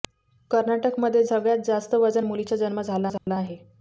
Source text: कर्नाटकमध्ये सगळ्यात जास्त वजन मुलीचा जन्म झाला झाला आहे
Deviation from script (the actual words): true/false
false